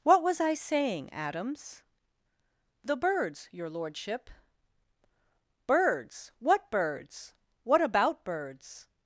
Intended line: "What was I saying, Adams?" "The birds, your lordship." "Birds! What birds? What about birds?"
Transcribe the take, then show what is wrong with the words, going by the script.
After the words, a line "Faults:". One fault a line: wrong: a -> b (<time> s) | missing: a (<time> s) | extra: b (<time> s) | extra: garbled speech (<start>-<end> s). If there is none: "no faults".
"What was I saying, Adams?" "The birds, your lordship." "Birds! What birds? What about birds?"
Faults:
no faults